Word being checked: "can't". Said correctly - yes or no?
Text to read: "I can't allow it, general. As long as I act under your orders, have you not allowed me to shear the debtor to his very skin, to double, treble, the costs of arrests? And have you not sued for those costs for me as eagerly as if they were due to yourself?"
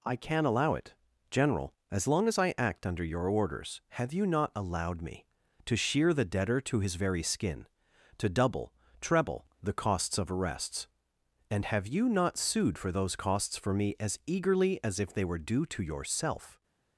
no